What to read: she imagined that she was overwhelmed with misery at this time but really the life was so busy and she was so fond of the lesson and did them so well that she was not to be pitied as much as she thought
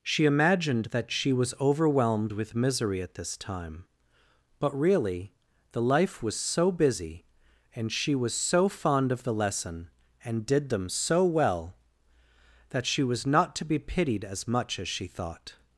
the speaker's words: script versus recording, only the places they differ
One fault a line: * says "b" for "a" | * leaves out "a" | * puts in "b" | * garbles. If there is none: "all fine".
all fine